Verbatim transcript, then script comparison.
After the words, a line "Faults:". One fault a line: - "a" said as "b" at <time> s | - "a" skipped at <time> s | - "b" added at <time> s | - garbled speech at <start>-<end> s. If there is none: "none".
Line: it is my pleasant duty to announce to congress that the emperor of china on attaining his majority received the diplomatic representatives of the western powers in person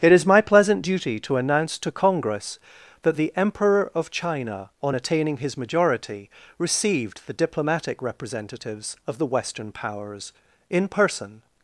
it is my pleasant duty to announce to congress that the emperor of china on attaining his majority received the diplomatic representatives of the western powers in person
Faults:
none